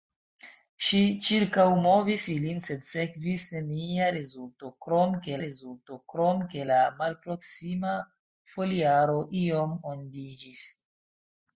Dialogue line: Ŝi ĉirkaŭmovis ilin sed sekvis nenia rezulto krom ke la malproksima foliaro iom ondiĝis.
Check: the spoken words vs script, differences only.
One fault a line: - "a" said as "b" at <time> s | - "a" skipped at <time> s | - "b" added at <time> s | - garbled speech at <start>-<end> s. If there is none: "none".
- "rezulto krom ke" added at 5.4 s